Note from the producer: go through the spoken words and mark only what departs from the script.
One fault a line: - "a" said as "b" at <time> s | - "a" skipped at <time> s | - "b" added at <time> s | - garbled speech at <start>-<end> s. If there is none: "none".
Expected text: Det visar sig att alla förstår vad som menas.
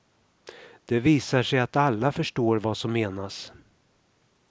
none